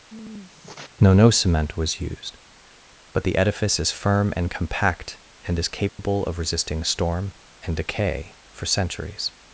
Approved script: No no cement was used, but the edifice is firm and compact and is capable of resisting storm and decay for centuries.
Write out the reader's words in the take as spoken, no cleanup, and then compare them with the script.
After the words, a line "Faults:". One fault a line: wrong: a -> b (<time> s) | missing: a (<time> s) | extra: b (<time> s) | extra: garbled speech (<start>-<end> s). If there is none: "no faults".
No no cement was used, but the edifice is firm and compact and is capable of resisting storm and decay for centuries.
Faults:
no faults